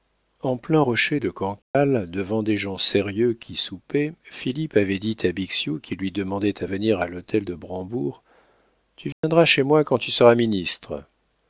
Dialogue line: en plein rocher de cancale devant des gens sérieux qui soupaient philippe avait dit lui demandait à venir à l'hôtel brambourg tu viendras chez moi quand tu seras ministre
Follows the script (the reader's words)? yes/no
no